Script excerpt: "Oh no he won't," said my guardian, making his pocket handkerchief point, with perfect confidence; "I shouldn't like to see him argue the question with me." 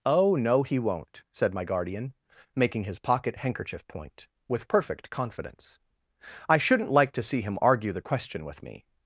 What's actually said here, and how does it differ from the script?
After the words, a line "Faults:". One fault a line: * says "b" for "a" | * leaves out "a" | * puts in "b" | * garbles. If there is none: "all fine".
"Oh no he won't," said my guardian, making his pocket handkerchief point, with perfect confidence; "I shouldn't like to see him argue the question with me."
Faults:
all fine